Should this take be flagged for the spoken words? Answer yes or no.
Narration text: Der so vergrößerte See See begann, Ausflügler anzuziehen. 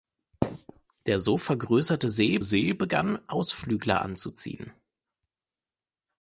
no